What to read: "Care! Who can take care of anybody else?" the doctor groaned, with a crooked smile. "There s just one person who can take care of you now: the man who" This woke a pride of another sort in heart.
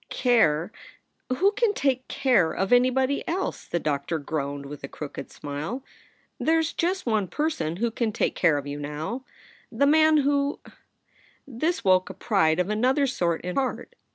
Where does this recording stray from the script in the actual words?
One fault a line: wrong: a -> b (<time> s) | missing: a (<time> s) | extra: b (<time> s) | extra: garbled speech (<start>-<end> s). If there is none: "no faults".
no faults